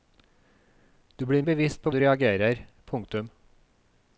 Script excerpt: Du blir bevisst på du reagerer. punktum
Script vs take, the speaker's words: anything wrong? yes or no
no